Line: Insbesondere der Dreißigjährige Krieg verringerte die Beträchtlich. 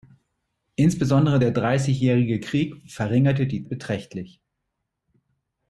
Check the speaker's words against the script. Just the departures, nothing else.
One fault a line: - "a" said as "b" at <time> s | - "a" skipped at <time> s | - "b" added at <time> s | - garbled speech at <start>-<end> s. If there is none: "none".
none